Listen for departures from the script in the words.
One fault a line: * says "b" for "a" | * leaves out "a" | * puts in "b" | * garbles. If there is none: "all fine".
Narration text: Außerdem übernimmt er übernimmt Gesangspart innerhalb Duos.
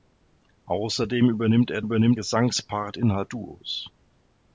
all fine